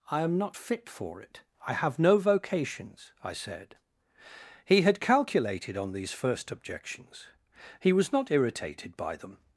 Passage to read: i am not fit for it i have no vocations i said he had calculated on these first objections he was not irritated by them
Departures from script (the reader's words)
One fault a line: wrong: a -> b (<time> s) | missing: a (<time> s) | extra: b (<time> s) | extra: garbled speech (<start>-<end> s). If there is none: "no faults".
no faults